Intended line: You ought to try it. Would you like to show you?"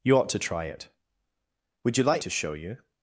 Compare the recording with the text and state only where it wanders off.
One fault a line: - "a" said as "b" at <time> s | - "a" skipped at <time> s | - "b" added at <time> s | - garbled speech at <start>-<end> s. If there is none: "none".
none